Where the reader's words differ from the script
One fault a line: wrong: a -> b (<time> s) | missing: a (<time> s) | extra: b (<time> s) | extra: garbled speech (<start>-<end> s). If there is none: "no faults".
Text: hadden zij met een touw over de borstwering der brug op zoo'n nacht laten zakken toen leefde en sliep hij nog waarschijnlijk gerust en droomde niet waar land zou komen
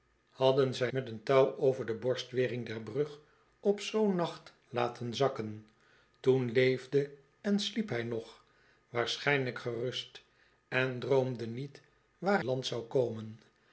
no faults